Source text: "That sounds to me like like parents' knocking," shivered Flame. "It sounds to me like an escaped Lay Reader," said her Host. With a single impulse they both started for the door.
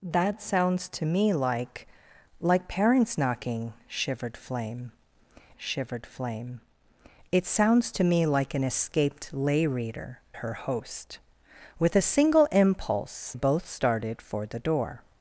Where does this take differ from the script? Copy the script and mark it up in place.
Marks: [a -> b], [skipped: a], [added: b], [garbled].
"That sounds to me like like parents' knocking," shivered Flame. [added: shivered Flame] "It sounds to me like an escaped Lay Reader," [skipped: said] her Host. With a single impulse [skipped: they] both started for the door.